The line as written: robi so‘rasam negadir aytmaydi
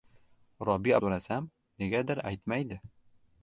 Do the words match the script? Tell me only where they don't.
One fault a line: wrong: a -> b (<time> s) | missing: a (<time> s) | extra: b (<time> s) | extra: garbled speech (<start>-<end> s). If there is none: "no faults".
no faults